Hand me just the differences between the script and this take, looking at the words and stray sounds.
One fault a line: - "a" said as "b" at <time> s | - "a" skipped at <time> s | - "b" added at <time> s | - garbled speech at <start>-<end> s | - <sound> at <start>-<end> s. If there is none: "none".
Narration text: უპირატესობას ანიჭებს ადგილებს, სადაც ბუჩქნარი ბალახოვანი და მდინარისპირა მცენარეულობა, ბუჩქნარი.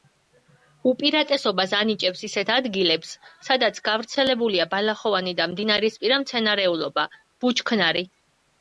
- "ისეთ" added at 2.3 s
- "ბუჩქნარი" said as "გავრცელებულია" at 3.9 s